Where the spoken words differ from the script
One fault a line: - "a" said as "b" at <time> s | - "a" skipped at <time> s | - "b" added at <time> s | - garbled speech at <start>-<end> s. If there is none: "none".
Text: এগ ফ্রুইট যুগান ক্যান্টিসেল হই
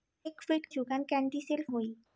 none